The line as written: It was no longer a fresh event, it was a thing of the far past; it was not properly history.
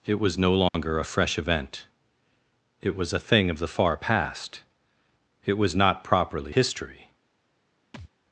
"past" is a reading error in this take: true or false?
false